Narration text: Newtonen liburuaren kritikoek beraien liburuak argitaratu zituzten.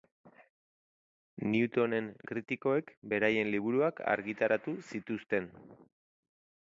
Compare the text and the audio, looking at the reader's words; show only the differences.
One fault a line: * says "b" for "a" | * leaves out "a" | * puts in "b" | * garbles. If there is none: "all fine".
* leaves out "liburuaren"